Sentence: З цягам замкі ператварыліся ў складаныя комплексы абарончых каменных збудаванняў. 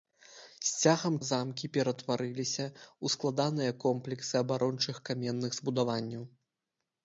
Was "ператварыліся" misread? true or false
false